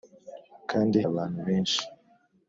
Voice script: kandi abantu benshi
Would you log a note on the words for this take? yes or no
no